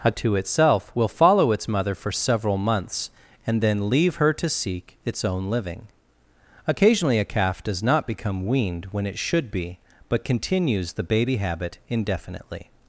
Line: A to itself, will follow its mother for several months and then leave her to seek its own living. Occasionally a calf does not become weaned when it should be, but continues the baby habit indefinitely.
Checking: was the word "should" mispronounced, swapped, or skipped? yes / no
no